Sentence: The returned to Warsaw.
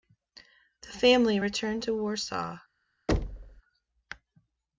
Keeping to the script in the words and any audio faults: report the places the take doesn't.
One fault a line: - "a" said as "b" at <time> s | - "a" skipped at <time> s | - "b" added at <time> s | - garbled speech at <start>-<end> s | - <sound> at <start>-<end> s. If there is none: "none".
- "family" added at 0.9 s
- thud at 3.1-3.6 s